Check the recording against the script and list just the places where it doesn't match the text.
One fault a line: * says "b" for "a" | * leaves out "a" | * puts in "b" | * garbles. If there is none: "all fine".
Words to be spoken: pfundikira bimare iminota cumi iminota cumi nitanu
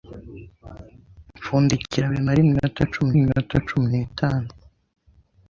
all fine